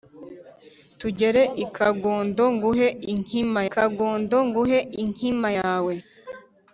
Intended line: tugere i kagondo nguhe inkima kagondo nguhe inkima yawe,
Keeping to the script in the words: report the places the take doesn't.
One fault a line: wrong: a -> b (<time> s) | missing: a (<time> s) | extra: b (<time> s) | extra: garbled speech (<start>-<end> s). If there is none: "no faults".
no faults